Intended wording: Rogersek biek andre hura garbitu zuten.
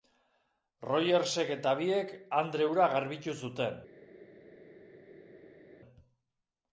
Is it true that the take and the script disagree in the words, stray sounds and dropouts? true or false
true